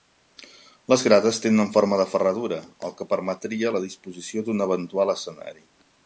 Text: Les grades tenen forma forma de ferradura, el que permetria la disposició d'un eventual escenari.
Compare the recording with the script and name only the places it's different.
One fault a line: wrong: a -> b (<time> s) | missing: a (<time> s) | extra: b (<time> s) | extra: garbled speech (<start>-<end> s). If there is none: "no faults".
missing: forma (2.0 s)